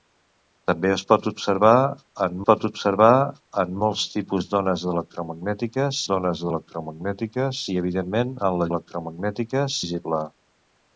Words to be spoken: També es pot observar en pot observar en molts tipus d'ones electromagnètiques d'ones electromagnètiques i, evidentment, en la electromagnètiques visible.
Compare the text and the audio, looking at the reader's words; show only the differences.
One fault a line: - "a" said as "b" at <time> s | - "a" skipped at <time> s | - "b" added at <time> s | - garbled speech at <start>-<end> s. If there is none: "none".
none